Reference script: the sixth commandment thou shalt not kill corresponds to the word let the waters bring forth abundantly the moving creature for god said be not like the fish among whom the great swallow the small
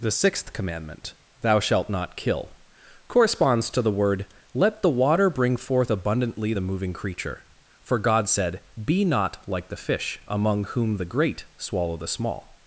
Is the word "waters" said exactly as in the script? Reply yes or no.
no